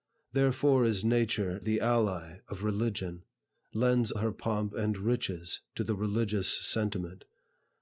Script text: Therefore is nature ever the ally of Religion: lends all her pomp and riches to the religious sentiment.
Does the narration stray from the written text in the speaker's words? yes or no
yes